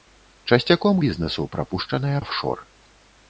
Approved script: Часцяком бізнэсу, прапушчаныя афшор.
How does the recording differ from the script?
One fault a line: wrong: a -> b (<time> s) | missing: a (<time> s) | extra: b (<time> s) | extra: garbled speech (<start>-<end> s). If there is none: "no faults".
no faults